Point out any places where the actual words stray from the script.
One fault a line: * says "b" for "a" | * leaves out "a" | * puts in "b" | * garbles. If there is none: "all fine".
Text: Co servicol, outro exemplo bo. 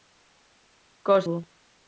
* leaves out "servicol outro exemplo"